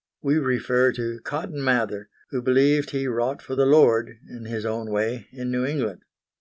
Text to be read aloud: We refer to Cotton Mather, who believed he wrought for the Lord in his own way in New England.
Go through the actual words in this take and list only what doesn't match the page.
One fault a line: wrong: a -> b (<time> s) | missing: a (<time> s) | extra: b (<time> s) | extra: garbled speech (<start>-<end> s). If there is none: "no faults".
no faults